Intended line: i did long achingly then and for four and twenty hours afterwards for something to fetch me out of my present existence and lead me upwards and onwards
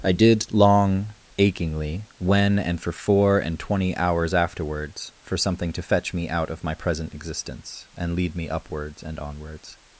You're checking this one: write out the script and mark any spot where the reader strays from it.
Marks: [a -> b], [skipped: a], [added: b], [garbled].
i did long achingly [then -> when] and for four and twenty hours afterwards for something to fetch me out of my present existence and lead me upwards and onwards